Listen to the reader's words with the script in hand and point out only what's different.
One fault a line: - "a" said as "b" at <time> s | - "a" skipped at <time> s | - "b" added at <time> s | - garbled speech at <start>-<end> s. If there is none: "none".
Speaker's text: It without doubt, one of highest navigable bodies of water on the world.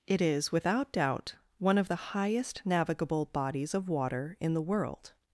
- "is" added at 0.2 s
- "the" added at 1.9 s
- "on" said as "in" at 4.4 s